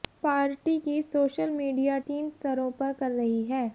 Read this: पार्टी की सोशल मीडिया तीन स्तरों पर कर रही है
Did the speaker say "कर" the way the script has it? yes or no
yes